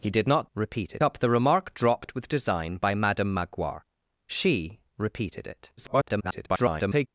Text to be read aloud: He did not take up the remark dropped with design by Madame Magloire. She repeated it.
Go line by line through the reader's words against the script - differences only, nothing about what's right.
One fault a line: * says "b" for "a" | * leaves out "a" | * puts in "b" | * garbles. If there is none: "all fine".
* says "repeated" for "take"
* garbles